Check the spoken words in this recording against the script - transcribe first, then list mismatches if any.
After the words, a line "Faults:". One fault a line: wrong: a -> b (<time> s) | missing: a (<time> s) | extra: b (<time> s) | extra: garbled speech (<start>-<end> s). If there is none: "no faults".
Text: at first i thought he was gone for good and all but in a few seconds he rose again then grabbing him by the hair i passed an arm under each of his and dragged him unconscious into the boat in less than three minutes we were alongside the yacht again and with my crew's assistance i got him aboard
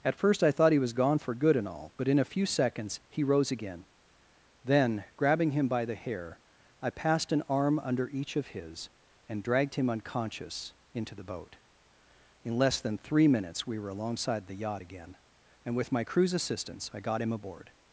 at first i thought he was gone for good and all but in a few seconds he rose again then grabbing him by the hair i passed an arm under each of his and dragged him unconscious into the boat in less than three minutes we were alongside the yacht again and with my crew's assistance i got him aboard
Faults:
no faults